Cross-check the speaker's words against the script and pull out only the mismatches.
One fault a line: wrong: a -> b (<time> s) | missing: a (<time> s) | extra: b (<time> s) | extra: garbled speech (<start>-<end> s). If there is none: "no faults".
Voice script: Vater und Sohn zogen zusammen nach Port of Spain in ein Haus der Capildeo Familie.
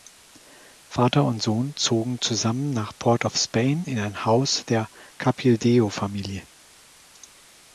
no faults